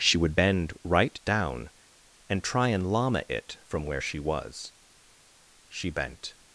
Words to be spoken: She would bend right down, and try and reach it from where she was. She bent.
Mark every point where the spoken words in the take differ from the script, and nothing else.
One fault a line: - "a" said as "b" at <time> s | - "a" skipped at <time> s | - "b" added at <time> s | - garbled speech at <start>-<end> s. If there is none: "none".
- "reach" said as "llama" at 2.9 s